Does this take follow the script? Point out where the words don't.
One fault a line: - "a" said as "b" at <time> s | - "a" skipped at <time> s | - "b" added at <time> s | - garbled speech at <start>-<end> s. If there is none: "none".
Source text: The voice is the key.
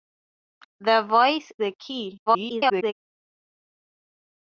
- "is" skipped at 1.5 s
- garbled speech at 2.3-2.9 s